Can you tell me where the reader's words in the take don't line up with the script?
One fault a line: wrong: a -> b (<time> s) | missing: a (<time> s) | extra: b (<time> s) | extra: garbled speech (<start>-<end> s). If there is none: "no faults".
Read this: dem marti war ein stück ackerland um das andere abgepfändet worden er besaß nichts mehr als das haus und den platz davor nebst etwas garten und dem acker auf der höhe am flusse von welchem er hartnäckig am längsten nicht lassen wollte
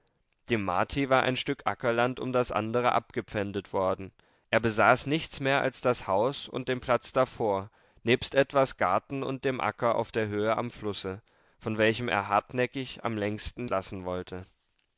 missing: nicht (13.7 s)